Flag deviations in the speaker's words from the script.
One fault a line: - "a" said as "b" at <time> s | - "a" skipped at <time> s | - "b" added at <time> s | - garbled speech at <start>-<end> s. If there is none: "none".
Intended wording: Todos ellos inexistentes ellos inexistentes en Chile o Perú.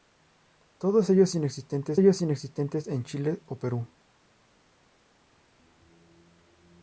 none